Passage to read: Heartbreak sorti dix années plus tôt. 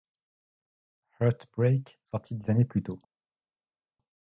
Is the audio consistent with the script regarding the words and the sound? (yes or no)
yes